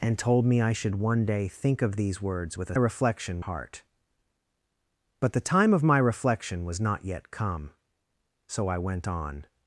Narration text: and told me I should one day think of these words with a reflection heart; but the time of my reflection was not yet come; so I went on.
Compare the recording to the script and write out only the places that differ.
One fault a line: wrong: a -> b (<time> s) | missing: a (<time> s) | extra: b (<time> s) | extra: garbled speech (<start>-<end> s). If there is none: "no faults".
no faults